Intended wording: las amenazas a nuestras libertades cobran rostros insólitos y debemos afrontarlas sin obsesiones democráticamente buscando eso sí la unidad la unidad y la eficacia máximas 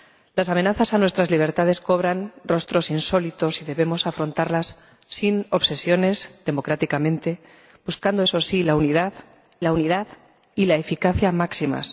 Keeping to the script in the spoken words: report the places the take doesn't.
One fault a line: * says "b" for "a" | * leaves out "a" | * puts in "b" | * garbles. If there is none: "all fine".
all fine